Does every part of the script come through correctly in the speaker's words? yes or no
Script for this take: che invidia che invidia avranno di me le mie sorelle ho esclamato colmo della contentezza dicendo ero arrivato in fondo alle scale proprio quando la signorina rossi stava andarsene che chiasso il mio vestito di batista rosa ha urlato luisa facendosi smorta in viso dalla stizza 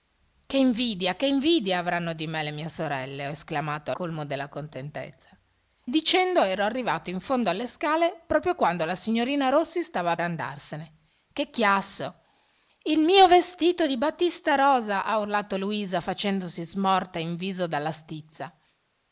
yes